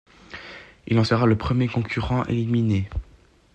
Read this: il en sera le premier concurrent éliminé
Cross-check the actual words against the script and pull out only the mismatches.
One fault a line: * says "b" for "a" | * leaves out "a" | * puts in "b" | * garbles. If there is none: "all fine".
all fine